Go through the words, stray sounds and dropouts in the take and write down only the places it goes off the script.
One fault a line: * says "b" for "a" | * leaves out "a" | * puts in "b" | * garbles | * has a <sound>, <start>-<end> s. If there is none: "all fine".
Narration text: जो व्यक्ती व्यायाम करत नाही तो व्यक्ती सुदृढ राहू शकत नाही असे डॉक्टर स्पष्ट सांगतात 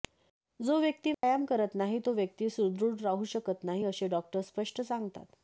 * has a dropout, 1.1-1.2 s